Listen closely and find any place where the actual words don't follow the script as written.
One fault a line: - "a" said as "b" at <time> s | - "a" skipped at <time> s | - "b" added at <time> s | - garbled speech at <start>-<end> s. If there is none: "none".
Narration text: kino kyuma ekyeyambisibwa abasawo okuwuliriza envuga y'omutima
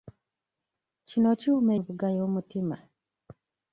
- "ekyeyambisibwa abasawo okuwuliriza" skipped at 1.7 s